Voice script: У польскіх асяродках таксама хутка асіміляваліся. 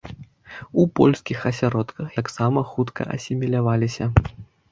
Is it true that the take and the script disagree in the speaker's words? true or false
false